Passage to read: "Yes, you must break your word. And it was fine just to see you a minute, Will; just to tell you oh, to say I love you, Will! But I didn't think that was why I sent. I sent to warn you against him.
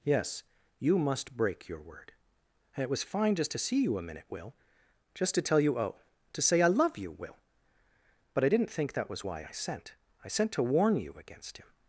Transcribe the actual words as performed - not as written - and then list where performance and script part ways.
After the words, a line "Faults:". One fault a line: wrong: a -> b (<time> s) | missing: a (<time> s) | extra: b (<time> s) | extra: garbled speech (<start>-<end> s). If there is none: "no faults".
"Yes, you must break your word. And it was fine just to see you a minute, Will; just to tell you oh, to say I love you, Will! But I didn't think that was why I sent. I sent to warn you against him.
Faults:
no faults